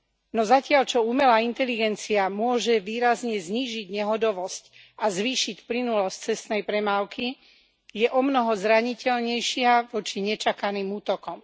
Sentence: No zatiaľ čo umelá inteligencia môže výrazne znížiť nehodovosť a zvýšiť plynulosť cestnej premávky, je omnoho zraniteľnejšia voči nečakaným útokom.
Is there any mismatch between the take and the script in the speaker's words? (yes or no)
no